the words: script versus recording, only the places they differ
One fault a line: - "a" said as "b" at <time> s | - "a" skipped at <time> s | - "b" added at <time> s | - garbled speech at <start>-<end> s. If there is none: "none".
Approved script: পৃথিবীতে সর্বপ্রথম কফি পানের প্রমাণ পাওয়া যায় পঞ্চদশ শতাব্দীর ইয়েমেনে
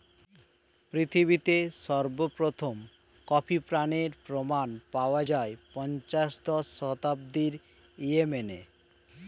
none